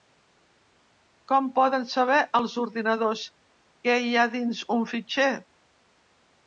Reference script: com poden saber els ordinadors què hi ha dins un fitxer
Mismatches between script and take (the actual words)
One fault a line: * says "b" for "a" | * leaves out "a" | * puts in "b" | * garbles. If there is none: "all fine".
all fine